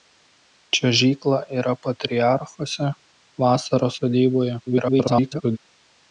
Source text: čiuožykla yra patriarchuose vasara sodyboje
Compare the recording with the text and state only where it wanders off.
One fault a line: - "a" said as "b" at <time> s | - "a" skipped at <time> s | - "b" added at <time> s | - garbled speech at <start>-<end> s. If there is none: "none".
- garbled speech at 4.7-5.6 s